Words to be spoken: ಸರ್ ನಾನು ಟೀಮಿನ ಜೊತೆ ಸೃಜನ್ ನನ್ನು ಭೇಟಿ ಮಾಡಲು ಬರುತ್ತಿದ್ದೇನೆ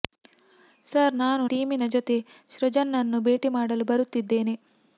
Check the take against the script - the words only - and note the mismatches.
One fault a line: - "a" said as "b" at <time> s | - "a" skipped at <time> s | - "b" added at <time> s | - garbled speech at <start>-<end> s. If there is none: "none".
none